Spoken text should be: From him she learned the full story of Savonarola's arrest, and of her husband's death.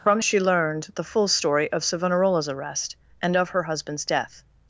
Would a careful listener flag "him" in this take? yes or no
yes